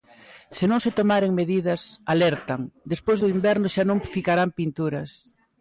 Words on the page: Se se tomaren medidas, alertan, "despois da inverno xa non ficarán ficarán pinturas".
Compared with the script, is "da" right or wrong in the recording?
wrong